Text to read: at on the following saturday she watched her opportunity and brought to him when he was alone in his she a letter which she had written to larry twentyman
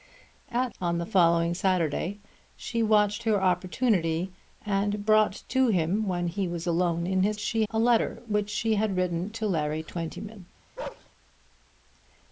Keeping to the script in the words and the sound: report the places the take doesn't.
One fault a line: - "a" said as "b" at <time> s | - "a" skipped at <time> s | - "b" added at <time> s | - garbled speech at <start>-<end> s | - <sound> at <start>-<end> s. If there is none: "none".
- bark at 10.8-11.1 s